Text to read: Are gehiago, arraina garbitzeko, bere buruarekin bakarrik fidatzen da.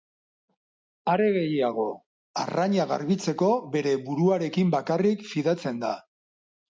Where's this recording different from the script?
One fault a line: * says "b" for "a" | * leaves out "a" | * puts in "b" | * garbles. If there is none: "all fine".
all fine